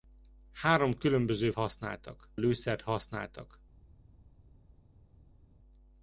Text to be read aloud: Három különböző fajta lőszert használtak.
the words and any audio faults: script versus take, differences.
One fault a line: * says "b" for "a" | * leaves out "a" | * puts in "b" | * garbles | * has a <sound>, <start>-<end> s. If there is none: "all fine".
* says "használtak" for "fajta"